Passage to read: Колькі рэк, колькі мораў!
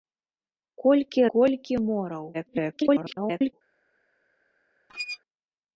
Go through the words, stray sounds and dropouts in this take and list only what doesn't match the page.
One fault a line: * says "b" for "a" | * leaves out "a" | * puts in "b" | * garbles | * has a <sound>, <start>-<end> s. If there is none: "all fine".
* leaves out "рэк"
* garbles
* has a squeak, 4.9-5.2 s